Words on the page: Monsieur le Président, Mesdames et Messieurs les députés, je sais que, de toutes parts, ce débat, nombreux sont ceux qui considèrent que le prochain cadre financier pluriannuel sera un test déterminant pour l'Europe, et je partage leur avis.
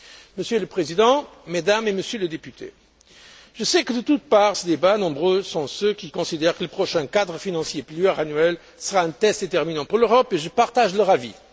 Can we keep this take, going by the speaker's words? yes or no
yes